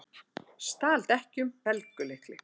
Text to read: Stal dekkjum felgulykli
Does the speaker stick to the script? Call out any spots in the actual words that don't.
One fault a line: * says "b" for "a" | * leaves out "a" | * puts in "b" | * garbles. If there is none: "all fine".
all fine